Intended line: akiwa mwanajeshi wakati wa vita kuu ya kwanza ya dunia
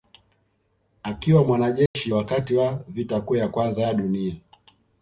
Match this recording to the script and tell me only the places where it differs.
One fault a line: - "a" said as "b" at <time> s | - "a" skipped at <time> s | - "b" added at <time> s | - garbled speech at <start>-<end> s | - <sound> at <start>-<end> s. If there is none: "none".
- dropout at 1.9-1.9 s